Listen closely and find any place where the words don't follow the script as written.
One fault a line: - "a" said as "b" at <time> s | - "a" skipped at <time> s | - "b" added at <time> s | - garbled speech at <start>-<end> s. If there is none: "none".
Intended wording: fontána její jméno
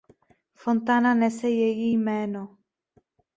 - "nese" added at 1.1 s